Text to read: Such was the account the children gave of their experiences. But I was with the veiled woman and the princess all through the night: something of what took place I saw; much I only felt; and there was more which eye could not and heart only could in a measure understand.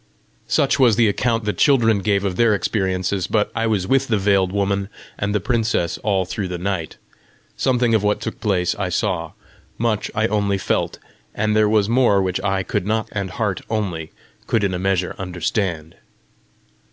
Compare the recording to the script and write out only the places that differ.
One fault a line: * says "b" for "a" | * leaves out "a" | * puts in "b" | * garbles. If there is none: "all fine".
all fine